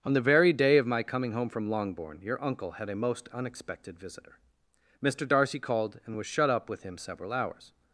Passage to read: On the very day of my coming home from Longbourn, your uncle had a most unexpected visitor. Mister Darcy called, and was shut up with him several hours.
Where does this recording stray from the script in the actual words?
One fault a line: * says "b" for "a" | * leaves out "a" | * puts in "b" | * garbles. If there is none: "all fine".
all fine